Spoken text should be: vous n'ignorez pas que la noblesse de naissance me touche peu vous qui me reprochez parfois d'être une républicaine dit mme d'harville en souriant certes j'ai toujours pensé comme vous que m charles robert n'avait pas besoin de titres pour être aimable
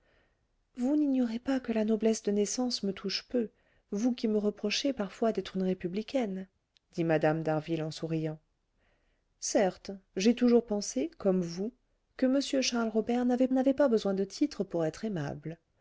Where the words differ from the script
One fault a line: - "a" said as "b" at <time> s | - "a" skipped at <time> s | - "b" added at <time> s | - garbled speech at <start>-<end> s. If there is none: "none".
- "n'avait" added at 13.5 s